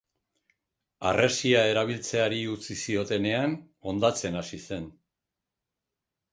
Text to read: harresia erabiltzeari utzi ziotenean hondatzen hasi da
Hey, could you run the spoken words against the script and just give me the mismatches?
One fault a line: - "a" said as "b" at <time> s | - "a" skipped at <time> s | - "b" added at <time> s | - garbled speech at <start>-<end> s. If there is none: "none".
- "da" said as "zen" at 4.7 s